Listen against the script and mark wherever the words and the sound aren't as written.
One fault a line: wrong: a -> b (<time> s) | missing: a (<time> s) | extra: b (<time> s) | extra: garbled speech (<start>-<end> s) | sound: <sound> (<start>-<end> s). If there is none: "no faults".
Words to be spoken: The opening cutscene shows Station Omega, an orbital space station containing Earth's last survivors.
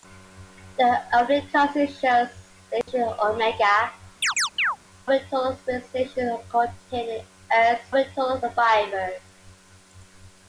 sound: dropout (2.8-2.9 s)
missing: an (3.9 s)
sound: chirp (4.2-4.8 s)
wrong: last -> orbital (7.9 s)